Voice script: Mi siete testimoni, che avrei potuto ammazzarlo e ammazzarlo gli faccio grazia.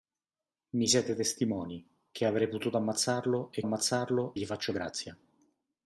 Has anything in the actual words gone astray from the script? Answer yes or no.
no